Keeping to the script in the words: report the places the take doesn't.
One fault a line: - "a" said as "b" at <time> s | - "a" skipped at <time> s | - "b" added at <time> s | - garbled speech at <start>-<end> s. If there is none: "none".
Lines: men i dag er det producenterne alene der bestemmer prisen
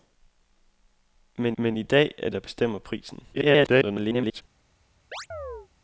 - "men" added at 1.6 s
- "det producenterne alene" skipped at 2.3 s
- garbled speech at 3.3-4.4 s